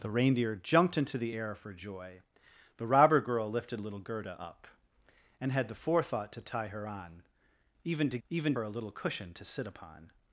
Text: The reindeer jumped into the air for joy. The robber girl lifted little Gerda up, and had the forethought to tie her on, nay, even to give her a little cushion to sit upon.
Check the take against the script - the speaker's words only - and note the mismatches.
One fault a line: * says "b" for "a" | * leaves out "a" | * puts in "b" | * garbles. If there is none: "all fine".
* leaves out "nay"
* says "even" for "give"